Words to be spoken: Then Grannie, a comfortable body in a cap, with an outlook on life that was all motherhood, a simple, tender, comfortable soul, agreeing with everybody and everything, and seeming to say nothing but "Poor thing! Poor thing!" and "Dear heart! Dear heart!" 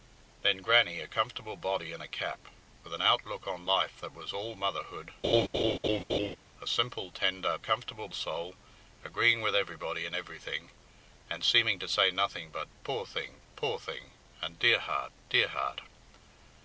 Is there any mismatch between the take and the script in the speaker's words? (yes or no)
no